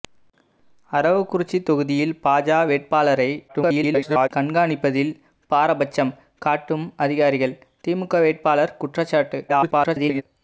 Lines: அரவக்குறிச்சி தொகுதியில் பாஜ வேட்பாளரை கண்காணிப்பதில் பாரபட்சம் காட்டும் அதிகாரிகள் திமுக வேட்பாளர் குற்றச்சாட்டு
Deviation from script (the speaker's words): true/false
true